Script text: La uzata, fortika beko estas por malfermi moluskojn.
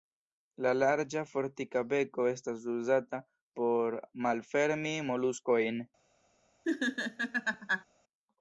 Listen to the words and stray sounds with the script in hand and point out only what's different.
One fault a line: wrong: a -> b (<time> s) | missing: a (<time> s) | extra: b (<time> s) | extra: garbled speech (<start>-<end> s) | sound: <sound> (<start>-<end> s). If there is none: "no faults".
wrong: uzata -> larĝa (0.8 s)
extra: uzata (2.8 s)
sound: laugh (6.6-7.8 s)